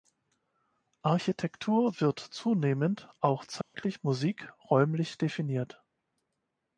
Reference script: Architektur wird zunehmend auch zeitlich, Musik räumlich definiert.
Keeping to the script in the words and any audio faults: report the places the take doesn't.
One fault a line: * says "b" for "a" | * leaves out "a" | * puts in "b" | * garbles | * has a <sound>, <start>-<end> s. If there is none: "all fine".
* has a dropout, 3.6-3.7 s